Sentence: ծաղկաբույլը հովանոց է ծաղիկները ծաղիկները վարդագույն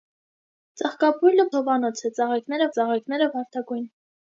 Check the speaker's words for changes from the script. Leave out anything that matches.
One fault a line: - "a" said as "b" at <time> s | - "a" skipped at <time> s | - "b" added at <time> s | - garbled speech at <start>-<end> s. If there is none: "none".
none